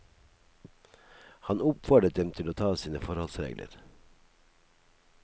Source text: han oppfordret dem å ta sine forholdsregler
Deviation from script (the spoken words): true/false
true